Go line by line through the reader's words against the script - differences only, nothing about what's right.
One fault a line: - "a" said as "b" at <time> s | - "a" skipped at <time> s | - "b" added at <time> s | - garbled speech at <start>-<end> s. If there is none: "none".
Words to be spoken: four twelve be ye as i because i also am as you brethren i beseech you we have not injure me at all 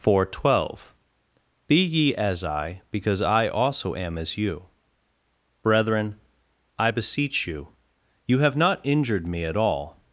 - "we" said as "you" at 8.2 s
- "injure" said as "injured" at 8.8 s